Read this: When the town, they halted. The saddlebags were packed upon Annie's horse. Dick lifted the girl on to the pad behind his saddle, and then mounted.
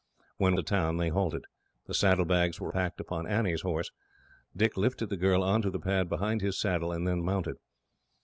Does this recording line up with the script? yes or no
yes